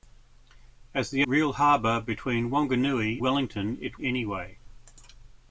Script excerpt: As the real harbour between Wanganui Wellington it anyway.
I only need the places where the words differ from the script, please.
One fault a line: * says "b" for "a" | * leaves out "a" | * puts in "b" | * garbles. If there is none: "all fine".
all fine